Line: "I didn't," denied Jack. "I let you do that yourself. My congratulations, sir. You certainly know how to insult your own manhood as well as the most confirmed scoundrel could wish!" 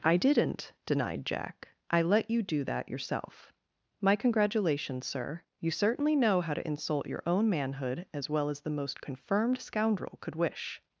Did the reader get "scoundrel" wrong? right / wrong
right